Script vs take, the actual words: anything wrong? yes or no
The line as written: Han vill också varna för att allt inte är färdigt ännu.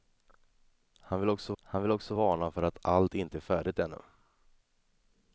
yes